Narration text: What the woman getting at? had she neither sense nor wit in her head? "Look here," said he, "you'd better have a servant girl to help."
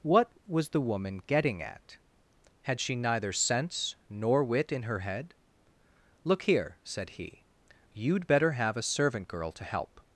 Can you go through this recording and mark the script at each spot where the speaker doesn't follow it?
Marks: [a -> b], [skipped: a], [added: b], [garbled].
What [added: was] the woman getting at? had she neither sense nor wit in her head? "Look here," said he, "you'd better have a servant girl to help."